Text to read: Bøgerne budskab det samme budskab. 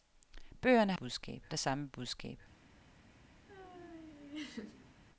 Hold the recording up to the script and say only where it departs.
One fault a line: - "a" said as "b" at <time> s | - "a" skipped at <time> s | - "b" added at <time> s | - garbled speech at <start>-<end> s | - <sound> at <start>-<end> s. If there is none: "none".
- laugh at 3.5-5.0 s